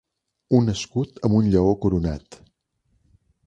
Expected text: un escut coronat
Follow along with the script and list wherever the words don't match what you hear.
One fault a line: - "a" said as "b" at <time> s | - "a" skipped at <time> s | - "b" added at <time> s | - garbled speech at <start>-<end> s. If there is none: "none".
- "amb un lleó" added at 1.3 s